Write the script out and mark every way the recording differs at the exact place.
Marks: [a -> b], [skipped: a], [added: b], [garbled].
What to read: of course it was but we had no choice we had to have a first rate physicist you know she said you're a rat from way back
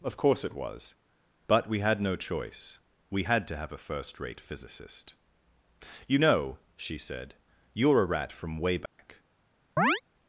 of course it was but we had no choice we had to have a first rate physicist you know she said you're a rat from way back